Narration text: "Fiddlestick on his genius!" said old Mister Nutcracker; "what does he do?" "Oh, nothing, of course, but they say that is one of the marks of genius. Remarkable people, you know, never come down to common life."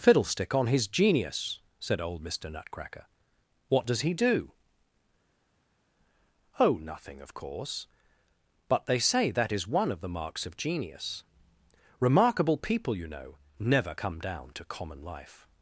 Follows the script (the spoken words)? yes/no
yes